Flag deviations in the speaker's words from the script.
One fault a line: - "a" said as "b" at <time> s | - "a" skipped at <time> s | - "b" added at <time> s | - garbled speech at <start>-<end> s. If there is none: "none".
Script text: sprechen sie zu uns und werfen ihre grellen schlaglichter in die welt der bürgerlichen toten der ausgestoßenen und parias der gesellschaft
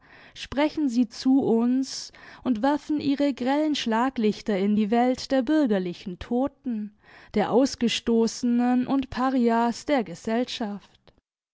none